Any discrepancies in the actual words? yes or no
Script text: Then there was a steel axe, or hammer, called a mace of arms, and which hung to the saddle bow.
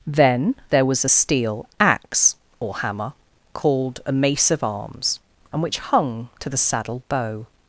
no